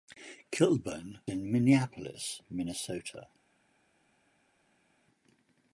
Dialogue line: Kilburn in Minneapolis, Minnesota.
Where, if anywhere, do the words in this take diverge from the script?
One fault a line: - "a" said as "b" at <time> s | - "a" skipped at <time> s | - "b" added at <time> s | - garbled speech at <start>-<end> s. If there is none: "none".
none